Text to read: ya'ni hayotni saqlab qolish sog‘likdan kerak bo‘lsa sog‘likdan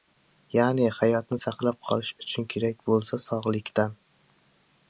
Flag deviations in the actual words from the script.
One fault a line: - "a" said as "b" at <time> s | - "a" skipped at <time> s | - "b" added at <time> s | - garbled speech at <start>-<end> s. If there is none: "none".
- "sog‘likdan" said as "uchun" at 2.3 s